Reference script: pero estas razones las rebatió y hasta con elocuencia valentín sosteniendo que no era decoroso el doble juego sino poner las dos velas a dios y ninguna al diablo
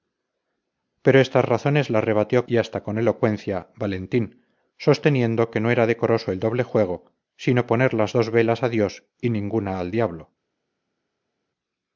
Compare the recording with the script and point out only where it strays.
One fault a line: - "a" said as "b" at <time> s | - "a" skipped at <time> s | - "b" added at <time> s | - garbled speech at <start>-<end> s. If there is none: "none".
none